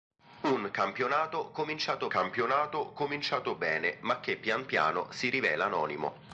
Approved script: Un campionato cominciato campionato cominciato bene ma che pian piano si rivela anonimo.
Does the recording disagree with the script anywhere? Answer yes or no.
no